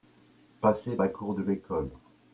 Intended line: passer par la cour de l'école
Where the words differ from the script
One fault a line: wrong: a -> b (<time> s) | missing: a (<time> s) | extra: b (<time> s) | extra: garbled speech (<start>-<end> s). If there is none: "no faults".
missing: par (1.0 s)